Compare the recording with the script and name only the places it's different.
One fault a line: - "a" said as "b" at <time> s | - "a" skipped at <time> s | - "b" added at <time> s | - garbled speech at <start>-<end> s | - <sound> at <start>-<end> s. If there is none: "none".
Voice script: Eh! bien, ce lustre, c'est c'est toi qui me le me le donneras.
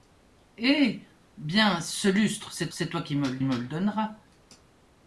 none